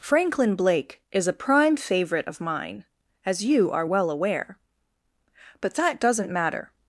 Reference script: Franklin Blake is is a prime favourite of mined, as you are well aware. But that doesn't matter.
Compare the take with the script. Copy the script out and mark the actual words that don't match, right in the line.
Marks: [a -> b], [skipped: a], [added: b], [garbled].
Franklin Blake is [skipped: is] a prime favourite of [mined, -> mine] as you are well aware. But that doesn't matter.